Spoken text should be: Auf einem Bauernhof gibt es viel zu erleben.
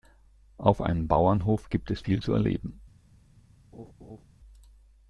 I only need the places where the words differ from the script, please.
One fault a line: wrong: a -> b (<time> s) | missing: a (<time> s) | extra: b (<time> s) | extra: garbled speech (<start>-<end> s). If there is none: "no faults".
no faults